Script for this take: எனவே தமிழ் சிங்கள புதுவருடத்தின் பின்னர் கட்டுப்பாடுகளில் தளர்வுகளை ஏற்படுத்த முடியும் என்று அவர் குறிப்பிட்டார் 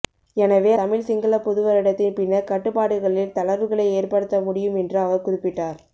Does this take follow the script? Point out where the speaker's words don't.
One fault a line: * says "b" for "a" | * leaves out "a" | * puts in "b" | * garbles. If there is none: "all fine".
all fine